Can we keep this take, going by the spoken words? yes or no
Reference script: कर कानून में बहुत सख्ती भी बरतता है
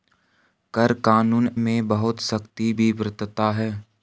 yes